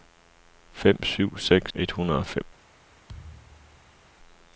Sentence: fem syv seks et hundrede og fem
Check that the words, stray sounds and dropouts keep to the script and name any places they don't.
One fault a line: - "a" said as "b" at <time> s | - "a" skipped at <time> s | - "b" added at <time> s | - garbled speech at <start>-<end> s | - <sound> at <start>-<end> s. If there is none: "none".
- thud at 3.1-4.0 s